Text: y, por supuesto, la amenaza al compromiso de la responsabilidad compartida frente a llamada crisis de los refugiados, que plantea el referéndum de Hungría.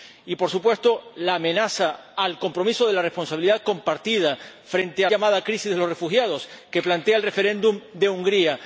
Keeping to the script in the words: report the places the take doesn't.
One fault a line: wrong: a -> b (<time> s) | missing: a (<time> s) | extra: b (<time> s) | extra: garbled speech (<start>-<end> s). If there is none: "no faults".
no faults